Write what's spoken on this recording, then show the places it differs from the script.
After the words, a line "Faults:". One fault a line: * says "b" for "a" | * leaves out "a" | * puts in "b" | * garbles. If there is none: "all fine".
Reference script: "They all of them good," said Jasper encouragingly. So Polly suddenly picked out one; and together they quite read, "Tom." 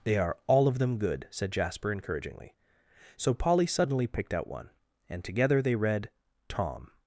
"They are all of them good," said Jasper encouragingly. So Polly suddenly picked out one; and together they read, "Tom."
Faults:
* puts in "are"
* leaves out "quite"